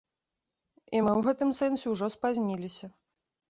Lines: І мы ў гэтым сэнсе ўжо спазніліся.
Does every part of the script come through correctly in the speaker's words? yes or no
yes